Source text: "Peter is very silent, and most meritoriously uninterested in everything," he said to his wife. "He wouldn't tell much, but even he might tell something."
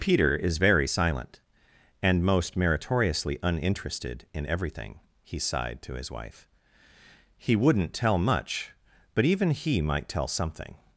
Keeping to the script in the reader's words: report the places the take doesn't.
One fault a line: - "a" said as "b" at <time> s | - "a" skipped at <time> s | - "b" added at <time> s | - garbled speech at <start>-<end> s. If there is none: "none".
- "said" said as "sighed" at 5.4 s